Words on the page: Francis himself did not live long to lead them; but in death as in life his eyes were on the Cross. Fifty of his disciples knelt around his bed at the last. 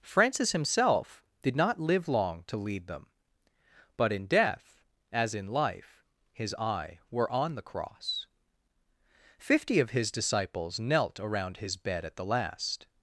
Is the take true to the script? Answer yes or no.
no